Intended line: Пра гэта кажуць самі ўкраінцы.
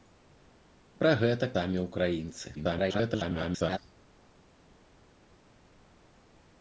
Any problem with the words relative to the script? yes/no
yes